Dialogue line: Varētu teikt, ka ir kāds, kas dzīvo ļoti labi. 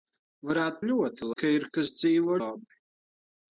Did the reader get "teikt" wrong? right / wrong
wrong